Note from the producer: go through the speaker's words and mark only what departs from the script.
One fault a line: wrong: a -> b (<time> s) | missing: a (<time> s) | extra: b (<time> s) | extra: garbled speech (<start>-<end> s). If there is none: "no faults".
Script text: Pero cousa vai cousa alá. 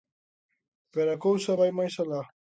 extra: a (1.1 s)
wrong: cousa -> máis (1.8 s)